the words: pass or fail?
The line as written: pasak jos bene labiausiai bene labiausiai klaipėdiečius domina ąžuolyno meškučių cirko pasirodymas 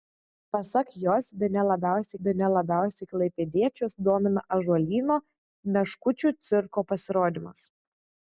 pass